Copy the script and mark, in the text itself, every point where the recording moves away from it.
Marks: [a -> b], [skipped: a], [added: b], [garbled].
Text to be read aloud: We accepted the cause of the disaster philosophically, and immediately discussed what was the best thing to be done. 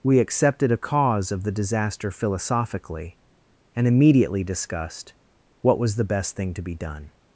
We accepted [the -> a] cause of the disaster philosophically, and immediately discussed what was the best thing to be done.